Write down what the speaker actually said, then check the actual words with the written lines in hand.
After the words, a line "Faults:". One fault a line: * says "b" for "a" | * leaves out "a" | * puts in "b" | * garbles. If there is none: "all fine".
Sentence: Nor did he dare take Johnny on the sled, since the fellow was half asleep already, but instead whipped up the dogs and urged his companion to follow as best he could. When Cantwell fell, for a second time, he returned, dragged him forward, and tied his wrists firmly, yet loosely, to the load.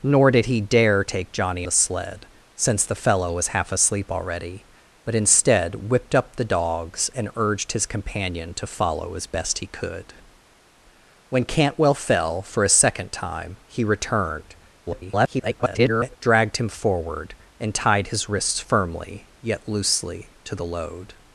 Nor did he dare take Johnny the sled, since the fellow was half asleep already, but instead whipped up the dogs and urged his companion to follow as best he could. When Cantwell fell, for a second time, he returned, [garbled] dragged him forward, and tied his wrists firmly, yet loosely, to the load.
Faults:
* leaves out "on"
* garbles